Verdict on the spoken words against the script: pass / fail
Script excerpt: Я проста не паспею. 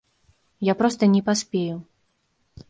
pass